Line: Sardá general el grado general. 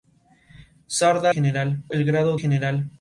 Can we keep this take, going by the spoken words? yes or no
yes